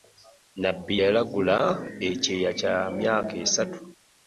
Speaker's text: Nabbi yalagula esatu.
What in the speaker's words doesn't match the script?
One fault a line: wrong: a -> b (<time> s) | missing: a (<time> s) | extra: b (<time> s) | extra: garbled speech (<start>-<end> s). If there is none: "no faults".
extra: ekyeya kya myaka (2.1 s)